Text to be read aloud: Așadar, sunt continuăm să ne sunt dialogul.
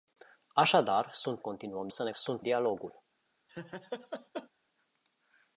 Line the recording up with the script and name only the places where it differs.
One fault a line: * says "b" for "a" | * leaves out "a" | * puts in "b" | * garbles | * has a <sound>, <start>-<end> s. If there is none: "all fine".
* has a laugh, 3.5-4.5 s